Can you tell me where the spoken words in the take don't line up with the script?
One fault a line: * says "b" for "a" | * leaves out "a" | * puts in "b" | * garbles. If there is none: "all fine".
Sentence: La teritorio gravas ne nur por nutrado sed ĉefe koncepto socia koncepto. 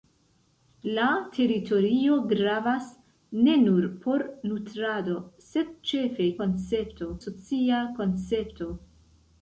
all fine